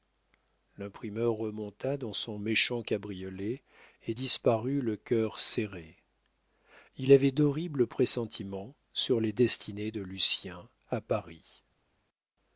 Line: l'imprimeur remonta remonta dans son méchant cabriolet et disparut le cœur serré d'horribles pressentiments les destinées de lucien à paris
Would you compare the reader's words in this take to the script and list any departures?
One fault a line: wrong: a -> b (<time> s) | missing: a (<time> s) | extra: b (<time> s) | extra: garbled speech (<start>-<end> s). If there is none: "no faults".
missing: remonta (1.9 s)
extra: il avait (7.0 s)
extra: sur (8.9 s)